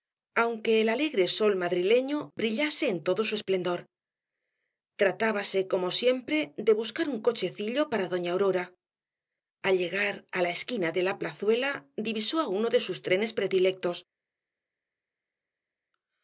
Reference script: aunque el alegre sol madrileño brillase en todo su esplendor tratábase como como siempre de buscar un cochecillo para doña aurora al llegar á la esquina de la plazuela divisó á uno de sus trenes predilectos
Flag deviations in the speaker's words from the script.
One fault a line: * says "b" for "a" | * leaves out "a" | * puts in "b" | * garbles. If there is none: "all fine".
* leaves out "como"